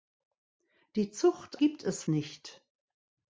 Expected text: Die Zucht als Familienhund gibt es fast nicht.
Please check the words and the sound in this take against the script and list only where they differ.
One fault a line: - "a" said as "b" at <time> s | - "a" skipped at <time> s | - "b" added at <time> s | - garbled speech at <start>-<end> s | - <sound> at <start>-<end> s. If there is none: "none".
- "als Familienhund" skipped at 1.6 s
- "fast" skipped at 2.0 s